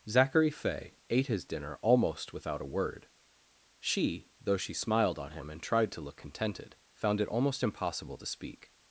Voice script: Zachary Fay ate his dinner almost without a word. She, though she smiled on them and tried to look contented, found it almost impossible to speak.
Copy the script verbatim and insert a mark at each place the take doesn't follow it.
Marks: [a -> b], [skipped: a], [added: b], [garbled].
Zachary Fay ate his dinner almost without a word. She, though she smiled on [them -> him] and tried to look contented, found it almost impossible to speak.